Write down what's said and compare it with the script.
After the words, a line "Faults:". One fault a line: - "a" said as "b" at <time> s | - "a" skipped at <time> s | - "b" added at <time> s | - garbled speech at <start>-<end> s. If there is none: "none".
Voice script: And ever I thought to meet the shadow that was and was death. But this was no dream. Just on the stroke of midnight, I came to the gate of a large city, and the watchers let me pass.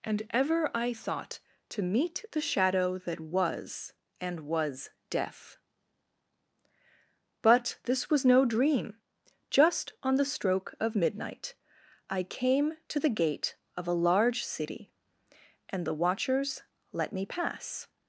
And ever I thought to meet the shadow that was and was death. But this was no dream. Just on the stroke of midnight, I came to the gate of a large city, and the watchers let me pass.
Faults:
none